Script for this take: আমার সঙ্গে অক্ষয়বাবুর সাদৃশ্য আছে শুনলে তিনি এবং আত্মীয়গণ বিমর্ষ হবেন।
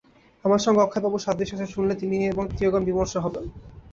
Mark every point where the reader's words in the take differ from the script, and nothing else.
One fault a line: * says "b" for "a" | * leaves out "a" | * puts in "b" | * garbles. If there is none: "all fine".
all fine